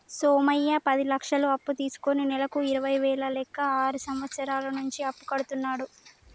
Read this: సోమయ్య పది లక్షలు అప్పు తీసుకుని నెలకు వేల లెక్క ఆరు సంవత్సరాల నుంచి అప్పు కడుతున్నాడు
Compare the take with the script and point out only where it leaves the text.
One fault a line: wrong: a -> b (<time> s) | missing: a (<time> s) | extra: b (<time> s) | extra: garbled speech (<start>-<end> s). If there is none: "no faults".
extra: ఇరవై (2.7 s)